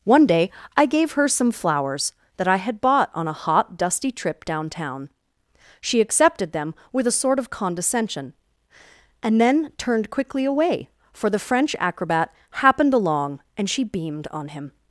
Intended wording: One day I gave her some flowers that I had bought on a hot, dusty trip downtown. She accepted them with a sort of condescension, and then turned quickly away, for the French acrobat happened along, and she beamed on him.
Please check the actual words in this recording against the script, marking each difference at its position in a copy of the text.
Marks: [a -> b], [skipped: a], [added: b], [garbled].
One day I gave her some flowers that I had bought on a hot, dusty trip downtown. She accepted them with a sort of condescension, and then turned quickly away, for the French acrobat happened along, and she beamed on him.